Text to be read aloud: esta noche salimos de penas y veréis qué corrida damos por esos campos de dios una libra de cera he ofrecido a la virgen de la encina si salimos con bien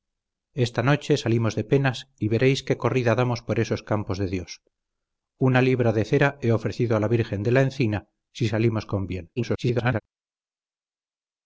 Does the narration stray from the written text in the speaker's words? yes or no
yes